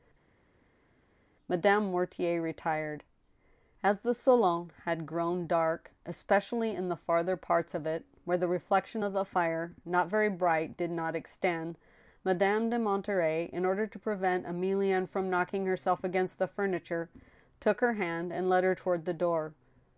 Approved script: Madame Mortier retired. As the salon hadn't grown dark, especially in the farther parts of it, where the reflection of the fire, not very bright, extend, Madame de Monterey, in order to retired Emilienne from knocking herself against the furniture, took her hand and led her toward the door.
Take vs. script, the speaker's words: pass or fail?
fail